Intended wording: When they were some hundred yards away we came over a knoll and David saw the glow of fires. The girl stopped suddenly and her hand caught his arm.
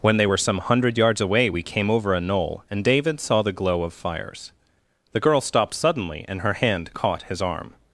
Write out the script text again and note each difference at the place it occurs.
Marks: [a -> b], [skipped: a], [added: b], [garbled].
When they were some hundred yards away we came over a knoll and David saw the glow of fires. The girl stopped suddenly and her hand caught his arm.